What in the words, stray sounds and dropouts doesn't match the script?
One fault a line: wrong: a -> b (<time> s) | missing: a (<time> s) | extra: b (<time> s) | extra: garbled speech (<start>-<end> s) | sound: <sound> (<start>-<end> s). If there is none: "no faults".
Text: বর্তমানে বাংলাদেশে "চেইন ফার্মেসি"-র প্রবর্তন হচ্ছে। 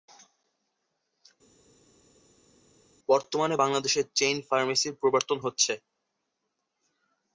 no faults